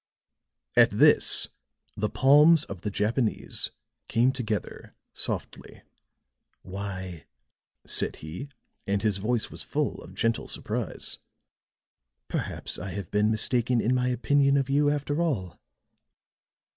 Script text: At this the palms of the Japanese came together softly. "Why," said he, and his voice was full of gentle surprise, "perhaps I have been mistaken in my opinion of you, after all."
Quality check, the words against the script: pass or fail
pass